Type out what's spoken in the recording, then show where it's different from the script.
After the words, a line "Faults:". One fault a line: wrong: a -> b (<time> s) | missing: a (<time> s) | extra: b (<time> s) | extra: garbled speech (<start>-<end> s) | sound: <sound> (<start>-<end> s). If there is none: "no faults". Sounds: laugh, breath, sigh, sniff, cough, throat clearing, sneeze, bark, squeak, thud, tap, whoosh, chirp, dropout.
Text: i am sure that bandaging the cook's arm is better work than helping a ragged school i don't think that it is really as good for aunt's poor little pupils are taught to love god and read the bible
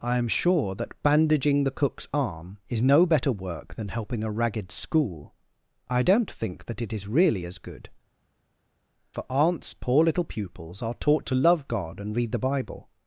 i am sure that bandaging the cook's arm is no better work than helping a ragged school i don't think that it is really as good for aunt's poor little pupils are taught to love god and read the bible
Faults:
extra: no (2.8 s)